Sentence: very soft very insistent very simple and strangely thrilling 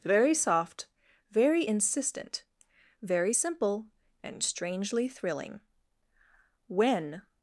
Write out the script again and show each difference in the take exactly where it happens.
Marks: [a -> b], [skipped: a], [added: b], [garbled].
very soft very insistent very simple and strangely thrilling [added: when]